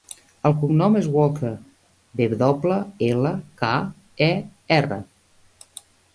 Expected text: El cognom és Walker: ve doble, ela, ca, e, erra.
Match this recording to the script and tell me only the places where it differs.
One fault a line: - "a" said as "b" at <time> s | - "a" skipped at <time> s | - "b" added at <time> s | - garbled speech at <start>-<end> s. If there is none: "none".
none